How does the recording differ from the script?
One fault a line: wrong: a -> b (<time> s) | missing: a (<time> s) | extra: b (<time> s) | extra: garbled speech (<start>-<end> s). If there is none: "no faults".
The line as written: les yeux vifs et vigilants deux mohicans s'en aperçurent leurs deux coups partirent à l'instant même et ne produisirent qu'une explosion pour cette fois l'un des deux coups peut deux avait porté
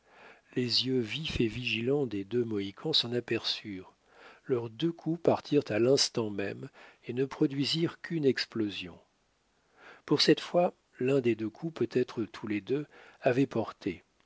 extra: des (2.1 s)
extra: être tous les (11.9 s)